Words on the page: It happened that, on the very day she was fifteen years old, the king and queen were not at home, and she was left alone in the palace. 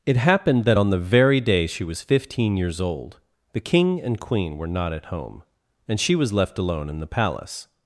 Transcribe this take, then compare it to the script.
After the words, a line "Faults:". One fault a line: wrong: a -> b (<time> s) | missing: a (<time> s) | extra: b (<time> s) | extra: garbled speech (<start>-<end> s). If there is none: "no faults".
It happened that, on the very day she was fifteen years old, the king and queen were not at home, and she was left alone in the palace.
Faults:
no faults